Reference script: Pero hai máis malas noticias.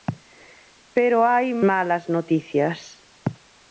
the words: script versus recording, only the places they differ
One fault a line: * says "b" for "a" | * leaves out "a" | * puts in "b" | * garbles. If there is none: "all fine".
* leaves out "máis"